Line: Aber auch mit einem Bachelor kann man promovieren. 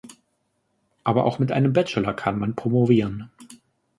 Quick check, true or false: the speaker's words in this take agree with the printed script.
true